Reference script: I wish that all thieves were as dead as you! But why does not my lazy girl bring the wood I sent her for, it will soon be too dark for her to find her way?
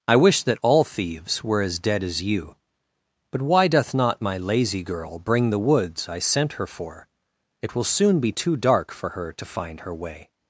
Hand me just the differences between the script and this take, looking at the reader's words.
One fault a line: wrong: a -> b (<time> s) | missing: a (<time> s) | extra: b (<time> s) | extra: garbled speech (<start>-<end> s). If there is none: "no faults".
wrong: does -> doth (3.7 s)
wrong: wood -> woods (5.6 s)